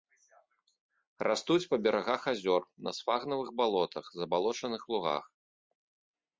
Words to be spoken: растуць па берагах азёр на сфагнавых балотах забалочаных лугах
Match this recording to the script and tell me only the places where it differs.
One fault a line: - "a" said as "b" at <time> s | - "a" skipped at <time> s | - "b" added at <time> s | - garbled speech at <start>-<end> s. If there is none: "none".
none